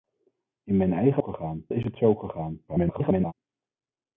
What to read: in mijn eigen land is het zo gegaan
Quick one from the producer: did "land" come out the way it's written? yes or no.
no